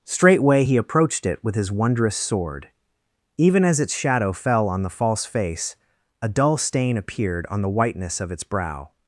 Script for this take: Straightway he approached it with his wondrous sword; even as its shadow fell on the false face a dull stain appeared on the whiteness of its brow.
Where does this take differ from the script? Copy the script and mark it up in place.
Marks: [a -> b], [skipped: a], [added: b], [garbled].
Straightway he approached it with his wondrous sword; even as its shadow fell on the false face a dull stain appeared on the whiteness of its brow.